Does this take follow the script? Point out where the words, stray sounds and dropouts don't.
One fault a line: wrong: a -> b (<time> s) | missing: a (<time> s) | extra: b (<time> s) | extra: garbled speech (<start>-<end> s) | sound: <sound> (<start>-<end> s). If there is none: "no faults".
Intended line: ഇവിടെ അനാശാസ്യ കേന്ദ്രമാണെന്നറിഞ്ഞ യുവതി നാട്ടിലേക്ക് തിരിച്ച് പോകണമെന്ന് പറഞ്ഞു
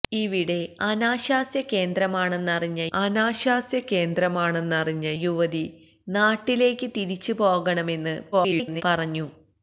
extra: അനാശാസ്യ കേന്ദ്രമാണെന്നറിഞ്ഞ (2.9 s)
extra: garbled speech (8.3-8.8 s)